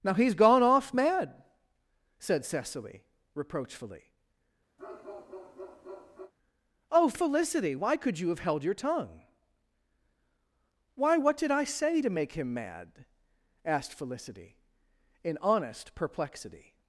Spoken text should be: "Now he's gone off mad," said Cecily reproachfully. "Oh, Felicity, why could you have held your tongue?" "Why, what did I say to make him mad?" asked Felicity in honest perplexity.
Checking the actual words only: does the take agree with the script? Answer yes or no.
yes